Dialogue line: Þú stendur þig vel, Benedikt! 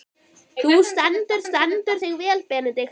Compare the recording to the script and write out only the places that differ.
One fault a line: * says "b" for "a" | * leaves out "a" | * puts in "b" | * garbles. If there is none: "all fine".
* puts in "stendur"